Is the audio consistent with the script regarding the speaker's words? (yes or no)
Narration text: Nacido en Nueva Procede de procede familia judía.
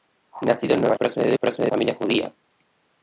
yes